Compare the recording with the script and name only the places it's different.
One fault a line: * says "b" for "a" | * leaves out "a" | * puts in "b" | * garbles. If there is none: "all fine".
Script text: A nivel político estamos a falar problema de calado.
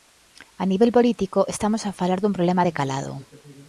* puts in "dun"